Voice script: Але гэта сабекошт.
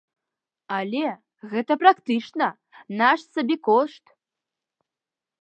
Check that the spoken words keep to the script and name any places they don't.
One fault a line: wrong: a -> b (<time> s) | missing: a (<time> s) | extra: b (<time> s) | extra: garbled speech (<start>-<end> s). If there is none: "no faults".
extra: практычна наш (1.8 s)